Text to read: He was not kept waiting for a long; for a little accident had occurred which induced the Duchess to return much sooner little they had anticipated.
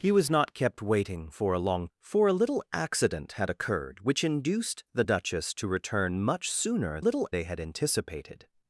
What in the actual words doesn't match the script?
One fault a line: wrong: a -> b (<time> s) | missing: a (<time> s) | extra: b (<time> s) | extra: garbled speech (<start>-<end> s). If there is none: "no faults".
no faults